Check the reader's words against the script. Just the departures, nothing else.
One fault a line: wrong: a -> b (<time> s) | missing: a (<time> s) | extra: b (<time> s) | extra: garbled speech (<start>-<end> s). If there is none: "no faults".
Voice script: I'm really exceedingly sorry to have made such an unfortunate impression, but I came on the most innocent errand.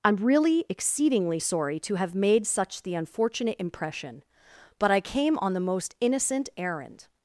wrong: an -> the (2.8 s)